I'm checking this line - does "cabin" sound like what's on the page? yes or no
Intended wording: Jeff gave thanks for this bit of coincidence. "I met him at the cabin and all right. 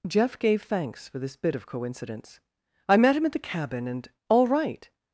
yes